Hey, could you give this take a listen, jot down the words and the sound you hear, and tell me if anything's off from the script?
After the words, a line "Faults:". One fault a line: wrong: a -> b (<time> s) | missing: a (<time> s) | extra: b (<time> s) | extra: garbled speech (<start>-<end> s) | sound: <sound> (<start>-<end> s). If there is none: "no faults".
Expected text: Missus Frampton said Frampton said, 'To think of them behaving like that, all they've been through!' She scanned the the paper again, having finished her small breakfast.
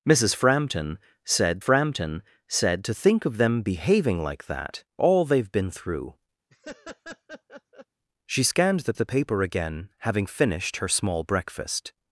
Missus Frampton said Frampton said, 'To think of them behaving like that, all they've been through!' She scanned the the paper again, having finished her small breakfast.
Faults:
sound: laugh (6.5-7.9 s)